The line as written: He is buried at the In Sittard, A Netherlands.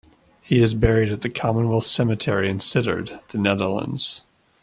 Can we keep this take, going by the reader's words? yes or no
no